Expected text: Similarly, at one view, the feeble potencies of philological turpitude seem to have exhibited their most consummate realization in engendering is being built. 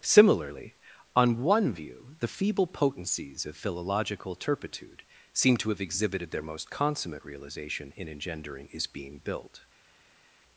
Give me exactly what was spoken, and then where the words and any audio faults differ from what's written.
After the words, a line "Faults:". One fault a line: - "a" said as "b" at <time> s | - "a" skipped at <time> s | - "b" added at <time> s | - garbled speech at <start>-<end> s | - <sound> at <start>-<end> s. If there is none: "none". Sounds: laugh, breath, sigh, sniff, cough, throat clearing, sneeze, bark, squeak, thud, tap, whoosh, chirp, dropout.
Similarly, on one view, the feeble potencies of philological turpitude seem to have exhibited their most consummate realization in engendering is being built.
Faults:
- "at" said as "on" at 1.1 s